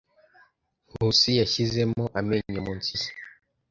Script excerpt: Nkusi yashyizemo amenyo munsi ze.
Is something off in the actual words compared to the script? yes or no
no